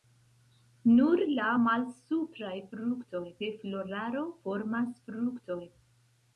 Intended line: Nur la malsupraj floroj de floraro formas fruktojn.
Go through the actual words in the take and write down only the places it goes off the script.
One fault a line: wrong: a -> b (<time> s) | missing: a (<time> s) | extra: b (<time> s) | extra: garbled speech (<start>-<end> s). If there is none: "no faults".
wrong: floroj -> fruktojn (2.8 s)